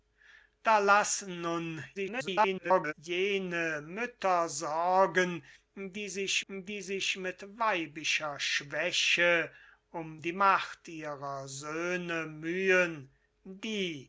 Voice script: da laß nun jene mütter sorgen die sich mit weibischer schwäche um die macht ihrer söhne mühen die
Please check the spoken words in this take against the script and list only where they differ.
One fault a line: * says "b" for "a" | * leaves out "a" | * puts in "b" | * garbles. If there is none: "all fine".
* garbles
* puts in "die sich"